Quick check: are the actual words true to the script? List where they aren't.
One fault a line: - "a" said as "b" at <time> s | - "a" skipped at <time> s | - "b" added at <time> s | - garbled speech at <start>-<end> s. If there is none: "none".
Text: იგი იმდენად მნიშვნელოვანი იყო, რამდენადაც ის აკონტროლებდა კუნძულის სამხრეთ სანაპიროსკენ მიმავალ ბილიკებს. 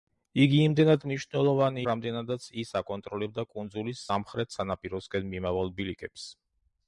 - "იყო" skipped at 1.8 s